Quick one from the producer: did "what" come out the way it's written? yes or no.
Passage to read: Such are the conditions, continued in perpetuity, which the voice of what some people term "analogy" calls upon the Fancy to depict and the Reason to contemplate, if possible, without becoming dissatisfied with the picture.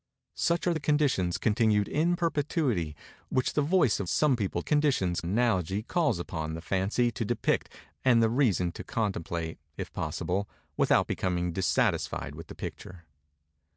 no